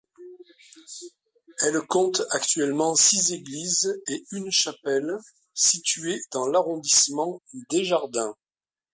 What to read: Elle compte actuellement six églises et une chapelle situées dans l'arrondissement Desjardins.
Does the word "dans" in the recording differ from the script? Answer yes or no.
no